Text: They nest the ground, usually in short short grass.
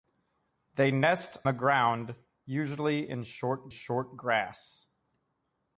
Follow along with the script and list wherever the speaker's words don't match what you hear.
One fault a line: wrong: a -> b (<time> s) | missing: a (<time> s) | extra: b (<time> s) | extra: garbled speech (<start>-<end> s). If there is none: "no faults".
no faults